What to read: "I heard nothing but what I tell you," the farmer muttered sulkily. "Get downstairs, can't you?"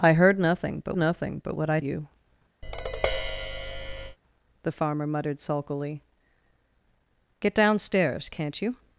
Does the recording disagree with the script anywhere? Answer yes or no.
yes